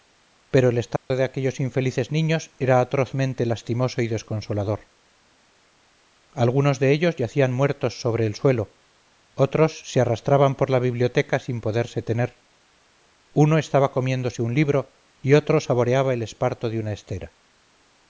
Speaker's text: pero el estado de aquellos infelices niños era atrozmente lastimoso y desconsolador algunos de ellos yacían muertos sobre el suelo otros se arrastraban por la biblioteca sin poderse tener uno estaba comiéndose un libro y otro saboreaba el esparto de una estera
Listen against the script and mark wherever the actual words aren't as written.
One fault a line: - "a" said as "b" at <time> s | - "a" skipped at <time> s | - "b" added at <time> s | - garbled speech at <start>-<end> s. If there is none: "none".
none